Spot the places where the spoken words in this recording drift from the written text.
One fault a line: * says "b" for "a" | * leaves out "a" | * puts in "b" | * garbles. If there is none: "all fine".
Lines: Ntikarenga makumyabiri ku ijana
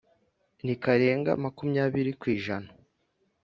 all fine